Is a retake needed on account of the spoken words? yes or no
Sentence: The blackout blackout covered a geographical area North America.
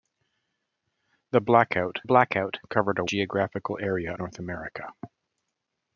no